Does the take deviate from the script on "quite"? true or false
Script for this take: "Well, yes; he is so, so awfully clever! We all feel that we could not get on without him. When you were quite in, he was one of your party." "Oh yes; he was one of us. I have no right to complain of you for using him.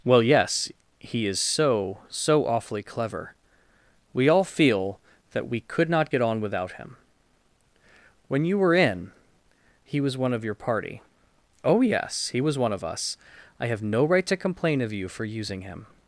true